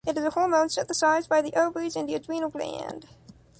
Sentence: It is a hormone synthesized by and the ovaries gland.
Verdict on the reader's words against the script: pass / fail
fail